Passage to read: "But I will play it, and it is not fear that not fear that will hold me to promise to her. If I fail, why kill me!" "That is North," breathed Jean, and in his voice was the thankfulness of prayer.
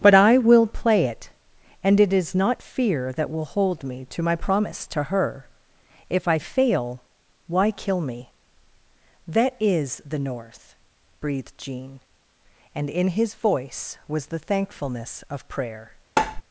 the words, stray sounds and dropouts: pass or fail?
fail